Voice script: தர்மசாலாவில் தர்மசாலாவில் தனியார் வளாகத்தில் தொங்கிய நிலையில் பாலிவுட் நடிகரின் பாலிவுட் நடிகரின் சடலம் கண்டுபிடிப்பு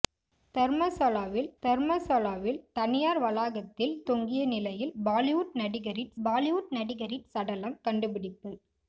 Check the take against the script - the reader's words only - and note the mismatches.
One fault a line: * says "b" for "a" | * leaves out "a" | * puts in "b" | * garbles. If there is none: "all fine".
all fine